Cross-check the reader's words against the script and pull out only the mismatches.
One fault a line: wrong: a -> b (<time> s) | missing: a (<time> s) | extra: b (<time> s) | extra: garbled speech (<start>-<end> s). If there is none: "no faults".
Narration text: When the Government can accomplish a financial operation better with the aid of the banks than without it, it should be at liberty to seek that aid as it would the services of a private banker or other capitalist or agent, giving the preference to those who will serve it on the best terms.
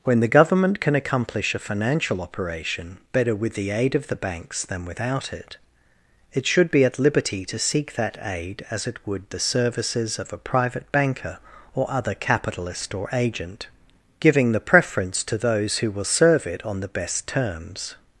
no faults